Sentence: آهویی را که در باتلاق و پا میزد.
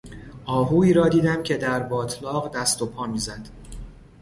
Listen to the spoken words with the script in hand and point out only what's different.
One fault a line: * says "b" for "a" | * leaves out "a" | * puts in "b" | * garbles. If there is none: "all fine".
* puts in "دیدم"
* puts in "دست"